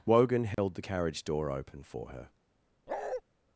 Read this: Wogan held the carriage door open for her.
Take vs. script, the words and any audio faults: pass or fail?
fail